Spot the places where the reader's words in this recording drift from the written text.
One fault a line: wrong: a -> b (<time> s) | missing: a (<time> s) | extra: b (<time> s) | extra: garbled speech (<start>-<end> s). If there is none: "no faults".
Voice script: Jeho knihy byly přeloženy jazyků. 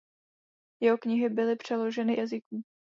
no faults